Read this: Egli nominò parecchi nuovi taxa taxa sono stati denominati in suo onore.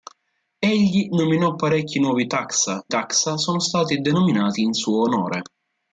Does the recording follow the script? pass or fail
pass